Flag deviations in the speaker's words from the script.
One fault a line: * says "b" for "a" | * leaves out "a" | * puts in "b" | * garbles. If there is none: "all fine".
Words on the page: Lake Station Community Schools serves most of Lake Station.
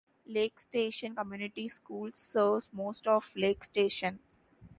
all fine